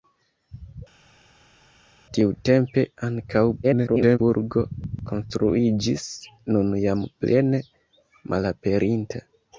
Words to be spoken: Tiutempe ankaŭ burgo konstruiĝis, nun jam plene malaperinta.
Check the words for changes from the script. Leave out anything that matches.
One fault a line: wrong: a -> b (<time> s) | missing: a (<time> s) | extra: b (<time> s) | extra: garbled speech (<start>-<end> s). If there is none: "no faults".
extra: garbled speech (3.6-4.2 s)